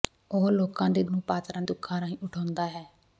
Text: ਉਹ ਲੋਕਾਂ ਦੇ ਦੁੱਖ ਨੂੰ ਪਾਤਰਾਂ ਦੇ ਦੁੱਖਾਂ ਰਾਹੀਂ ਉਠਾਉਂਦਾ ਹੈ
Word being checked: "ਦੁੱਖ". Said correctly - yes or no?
no